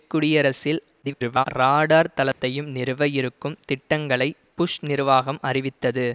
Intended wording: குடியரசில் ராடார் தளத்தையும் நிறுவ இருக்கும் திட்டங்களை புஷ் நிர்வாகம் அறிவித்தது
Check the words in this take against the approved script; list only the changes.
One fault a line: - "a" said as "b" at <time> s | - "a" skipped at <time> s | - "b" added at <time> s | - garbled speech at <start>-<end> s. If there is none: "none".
- garbled speech at 1.0-1.5 s